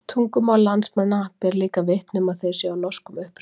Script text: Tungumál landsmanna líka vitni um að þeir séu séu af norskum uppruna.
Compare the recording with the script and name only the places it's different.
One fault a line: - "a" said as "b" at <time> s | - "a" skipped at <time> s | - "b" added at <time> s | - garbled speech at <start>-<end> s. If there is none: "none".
- "ber" added at 1.4 s
- "séu" skipped at 2.7 s